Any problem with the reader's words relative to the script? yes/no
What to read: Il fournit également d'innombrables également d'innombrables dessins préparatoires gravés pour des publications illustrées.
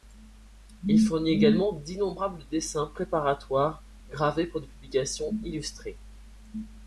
yes